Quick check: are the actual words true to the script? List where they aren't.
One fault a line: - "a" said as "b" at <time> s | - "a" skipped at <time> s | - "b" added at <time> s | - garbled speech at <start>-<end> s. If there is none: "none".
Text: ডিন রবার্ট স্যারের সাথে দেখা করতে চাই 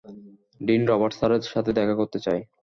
none